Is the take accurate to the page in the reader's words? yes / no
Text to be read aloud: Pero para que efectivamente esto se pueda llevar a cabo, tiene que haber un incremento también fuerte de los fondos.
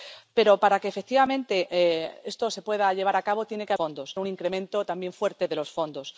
no